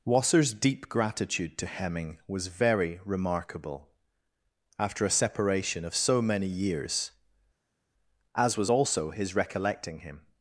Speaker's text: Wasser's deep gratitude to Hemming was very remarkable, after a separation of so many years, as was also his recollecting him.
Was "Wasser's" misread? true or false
false